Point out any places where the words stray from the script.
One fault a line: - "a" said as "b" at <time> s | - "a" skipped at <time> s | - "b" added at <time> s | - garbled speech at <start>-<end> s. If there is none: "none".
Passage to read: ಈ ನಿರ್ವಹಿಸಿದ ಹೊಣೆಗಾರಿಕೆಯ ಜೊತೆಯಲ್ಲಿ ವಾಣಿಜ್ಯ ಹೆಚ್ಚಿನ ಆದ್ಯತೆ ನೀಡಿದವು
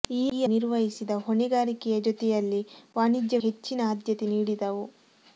none